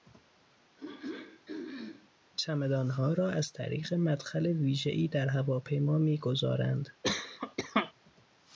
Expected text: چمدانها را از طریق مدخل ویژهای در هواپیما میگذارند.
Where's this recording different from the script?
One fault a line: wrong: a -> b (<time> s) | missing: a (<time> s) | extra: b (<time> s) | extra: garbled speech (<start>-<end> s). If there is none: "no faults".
no faults